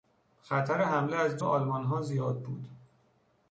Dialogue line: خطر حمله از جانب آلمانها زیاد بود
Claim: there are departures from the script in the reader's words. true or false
true